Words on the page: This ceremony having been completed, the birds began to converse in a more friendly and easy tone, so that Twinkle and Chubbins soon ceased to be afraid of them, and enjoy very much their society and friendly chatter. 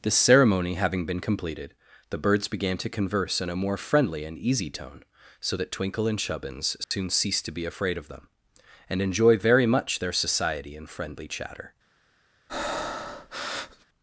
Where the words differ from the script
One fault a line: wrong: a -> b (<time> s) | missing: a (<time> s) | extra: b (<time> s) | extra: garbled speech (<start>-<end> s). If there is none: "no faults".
no faults